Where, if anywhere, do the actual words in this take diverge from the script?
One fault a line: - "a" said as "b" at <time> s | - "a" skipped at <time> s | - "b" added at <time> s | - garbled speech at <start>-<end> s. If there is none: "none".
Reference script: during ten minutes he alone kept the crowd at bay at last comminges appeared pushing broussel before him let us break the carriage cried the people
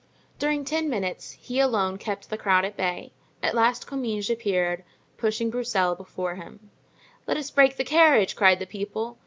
none